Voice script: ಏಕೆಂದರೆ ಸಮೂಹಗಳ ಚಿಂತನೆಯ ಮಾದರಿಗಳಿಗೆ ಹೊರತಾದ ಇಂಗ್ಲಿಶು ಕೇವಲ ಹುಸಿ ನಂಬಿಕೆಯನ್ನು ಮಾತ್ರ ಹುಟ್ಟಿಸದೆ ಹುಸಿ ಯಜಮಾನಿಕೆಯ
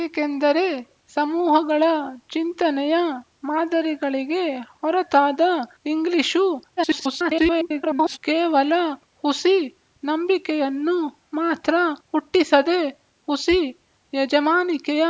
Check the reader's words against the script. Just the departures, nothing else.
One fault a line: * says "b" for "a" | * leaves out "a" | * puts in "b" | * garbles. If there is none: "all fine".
* garbles